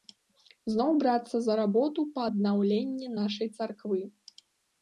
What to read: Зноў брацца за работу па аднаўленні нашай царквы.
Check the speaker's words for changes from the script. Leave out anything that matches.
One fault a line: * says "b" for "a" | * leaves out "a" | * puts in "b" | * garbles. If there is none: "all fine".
all fine